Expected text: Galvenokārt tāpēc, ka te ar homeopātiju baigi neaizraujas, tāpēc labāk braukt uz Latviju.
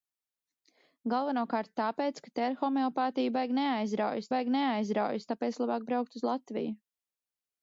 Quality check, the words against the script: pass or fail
fail